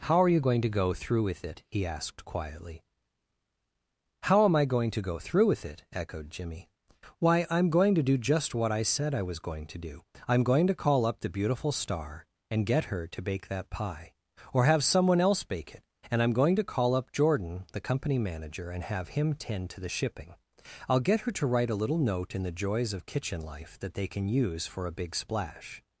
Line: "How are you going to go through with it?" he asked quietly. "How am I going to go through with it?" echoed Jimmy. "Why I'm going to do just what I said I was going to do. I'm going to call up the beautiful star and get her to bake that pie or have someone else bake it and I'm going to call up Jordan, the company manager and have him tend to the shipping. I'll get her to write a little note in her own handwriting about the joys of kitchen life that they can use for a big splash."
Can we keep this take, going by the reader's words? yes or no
no